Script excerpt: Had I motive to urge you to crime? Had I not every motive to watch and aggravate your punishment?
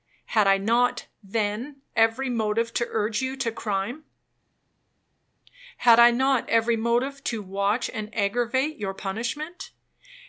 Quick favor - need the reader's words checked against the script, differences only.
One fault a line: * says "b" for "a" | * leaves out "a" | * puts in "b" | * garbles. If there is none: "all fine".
* puts in "not then every"